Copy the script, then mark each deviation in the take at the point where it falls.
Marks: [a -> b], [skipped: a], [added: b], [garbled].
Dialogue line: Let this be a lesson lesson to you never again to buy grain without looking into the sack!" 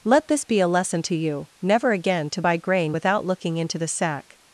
Let this be a lesson [skipped: lesson] to you never again to buy grain without looking into the sack!"